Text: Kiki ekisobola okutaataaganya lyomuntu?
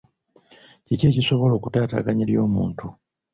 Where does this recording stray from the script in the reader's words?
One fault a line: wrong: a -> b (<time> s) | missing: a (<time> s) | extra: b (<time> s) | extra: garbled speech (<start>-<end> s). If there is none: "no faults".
no faults